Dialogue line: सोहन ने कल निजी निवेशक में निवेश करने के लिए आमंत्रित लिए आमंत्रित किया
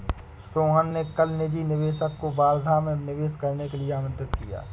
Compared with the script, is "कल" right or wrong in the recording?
right